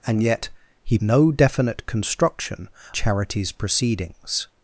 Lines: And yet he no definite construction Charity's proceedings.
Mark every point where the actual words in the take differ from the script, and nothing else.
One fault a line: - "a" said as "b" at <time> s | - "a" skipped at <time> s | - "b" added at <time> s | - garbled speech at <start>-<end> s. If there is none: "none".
none